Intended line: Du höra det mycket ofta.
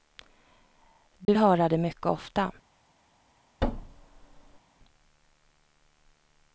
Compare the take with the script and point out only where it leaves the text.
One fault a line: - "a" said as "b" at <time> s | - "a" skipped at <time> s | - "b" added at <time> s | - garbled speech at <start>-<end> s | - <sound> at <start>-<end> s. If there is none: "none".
- dropout at 1.2-1.3 s
- thud at 3.6-4.6 s